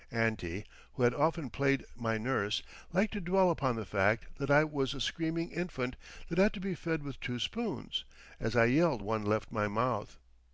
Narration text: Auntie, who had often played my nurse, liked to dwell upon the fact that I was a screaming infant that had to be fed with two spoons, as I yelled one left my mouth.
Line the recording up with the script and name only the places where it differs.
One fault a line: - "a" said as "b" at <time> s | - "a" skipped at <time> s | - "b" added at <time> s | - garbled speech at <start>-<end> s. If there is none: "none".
none